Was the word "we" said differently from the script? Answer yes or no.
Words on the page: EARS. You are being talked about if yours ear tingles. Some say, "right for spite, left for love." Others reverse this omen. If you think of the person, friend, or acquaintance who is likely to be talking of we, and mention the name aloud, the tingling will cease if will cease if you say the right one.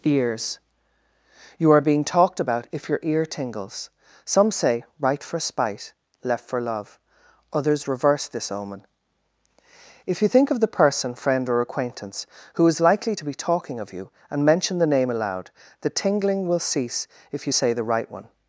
yes